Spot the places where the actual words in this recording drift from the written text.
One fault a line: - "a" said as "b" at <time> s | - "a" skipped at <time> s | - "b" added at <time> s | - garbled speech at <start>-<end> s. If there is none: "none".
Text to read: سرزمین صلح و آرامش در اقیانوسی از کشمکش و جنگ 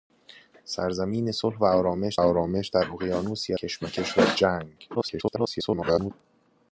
- "آرامش" added at 2.1 s
- "از" skipped at 3.5 s
- garbled speech at 4.9-6.1 s